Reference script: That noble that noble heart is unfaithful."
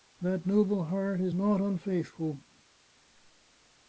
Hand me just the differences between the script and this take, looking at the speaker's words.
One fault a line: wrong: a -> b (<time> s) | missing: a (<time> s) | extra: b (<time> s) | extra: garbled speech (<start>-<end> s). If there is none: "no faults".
missing: that noble (0.8 s)
extra: not (1.3 s)